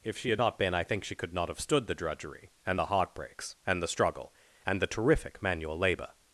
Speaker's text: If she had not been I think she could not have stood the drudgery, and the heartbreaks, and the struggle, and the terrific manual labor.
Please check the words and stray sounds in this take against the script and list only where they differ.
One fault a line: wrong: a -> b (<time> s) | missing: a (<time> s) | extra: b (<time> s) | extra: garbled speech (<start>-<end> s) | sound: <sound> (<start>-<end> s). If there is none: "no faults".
no faults